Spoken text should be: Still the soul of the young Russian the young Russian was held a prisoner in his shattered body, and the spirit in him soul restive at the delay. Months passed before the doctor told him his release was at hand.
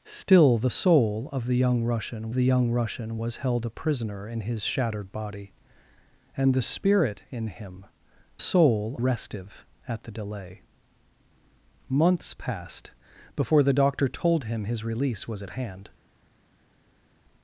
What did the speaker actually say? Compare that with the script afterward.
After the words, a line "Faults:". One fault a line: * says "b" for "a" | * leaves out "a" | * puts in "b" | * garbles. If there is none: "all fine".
Still the soul of the young Russian the young Russian was held a prisoner in his shattered body, and the spirit in him soul restive at the delay. Months passed before the doctor told him his release was at hand.
Faults:
all fine